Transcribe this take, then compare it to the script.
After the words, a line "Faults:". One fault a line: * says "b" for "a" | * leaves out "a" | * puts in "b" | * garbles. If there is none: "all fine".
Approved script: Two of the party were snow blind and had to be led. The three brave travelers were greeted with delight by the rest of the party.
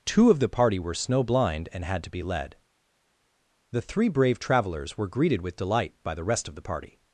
Two of the party were snow blind and had to be led. The three brave travelers were greeted with delight by the rest of the party.
Faults:
all fine